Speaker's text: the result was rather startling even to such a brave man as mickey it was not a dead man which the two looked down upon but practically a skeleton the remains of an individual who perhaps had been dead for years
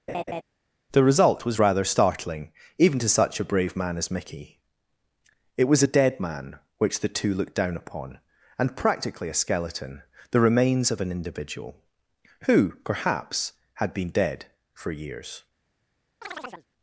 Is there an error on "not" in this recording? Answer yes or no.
yes